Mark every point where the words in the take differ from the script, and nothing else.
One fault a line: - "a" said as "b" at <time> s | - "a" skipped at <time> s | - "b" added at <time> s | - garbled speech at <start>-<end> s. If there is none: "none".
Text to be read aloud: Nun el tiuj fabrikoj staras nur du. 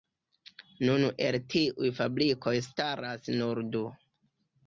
none